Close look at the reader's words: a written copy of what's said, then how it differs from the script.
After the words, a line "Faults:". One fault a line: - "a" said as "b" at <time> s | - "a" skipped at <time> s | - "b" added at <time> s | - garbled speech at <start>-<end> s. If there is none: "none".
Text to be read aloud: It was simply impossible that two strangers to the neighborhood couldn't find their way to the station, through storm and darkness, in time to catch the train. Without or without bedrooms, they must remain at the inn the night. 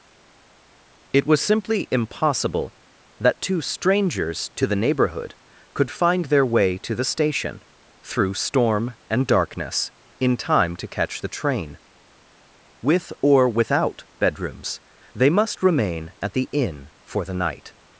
It was simply impossible that two strangers to the neighborhood could find their way to the station, through storm and darkness, in time to catch the train. With or without bedrooms, they must remain at the inn for the night.
Faults:
- "couldn't" said as "could" at 5.7 s
- "Without" said as "With" at 12.8 s
- "for" added at 17.0 s